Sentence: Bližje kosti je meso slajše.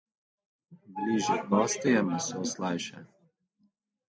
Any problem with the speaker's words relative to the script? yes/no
no